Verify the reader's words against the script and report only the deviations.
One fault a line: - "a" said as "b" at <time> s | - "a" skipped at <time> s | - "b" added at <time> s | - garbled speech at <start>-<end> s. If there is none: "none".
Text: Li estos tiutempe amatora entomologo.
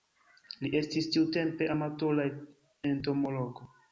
- "estos" said as "estis" at 0.8 s